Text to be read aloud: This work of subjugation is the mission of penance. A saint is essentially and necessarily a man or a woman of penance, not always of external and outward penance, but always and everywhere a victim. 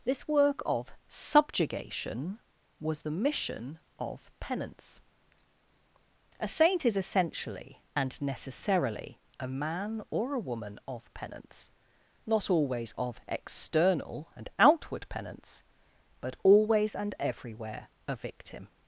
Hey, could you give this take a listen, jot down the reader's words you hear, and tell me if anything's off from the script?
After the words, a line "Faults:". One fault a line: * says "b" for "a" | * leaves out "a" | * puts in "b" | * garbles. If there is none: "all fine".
This work of subjugation was the mission of penance. A saint is essentially and necessarily a man or a woman of penance, not always of external and outward penance, but always and everywhere a victim.
Faults:
* says "was" for "is"